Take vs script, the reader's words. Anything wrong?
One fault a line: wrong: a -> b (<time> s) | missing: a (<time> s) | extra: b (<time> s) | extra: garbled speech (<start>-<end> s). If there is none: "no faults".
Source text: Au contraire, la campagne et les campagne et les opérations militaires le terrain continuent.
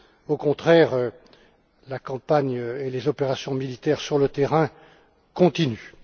missing: campagne et les (3.1 s)
extra: sur (4.0 s)